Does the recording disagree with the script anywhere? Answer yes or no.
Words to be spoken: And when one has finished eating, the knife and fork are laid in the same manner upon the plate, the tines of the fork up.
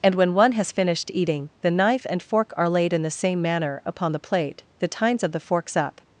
yes